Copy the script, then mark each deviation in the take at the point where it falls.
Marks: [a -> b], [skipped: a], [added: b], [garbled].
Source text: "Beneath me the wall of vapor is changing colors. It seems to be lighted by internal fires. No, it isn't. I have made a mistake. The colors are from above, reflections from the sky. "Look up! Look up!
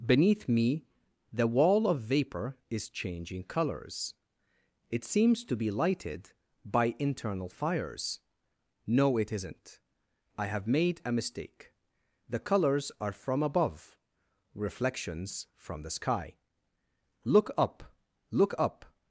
"Beneath me the wall of vapor is changing colors. It seems to be lighted by internal fires. No, it isn't. I have made a mistake. The colors are from above, reflections from the sky. "Look up! Look up!